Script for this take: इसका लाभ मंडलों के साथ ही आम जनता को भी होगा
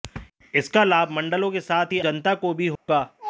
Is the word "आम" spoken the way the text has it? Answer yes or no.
no